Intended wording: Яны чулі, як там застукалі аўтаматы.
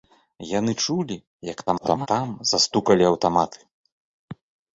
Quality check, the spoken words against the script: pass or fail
fail